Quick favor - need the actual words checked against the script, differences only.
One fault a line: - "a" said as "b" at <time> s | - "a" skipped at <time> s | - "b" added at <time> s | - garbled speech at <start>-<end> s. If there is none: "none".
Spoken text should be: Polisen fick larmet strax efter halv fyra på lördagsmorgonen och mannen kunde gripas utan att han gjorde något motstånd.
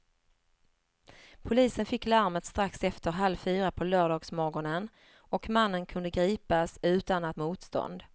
- "han gjorde något" skipped at 7.4 s